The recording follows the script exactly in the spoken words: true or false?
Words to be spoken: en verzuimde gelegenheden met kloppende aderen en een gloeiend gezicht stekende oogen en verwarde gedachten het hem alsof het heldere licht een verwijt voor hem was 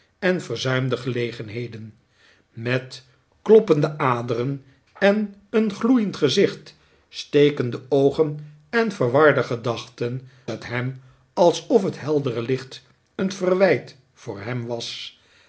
true